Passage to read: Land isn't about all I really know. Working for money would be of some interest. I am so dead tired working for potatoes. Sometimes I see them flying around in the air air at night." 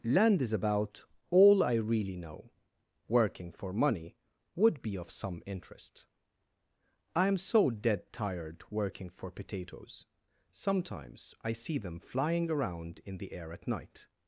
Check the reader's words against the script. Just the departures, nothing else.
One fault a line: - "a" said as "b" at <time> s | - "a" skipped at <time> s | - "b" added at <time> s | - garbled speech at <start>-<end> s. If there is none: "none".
- "isn't" said as "is" at 0.4 s
- "air" skipped at 13.5 s